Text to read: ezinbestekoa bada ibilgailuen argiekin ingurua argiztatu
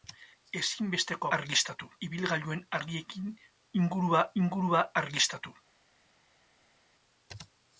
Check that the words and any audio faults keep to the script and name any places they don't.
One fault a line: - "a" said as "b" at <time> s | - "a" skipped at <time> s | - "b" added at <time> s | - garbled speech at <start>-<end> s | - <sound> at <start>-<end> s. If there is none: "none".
- "bada" said as "argiztatu" at 1.4 s
- "ingurua" added at 4.4 s